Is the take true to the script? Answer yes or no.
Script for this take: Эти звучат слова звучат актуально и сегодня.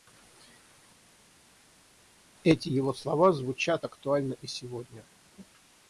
no